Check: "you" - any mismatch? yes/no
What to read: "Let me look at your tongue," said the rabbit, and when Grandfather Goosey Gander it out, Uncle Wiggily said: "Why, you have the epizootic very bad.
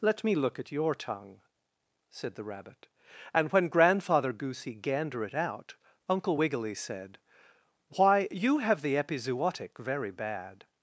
no